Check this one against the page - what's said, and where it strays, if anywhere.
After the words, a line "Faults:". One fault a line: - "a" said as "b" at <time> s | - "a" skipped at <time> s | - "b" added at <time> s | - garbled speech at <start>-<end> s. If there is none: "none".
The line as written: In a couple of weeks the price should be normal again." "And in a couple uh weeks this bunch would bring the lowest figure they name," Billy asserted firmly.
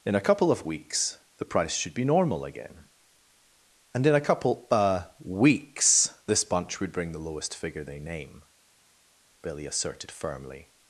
In a couple of weeks the price should be normal again." "And in a couple uh weeks this bunch would bring the lowest figure they name," Billy asserted firmly.
Faults:
none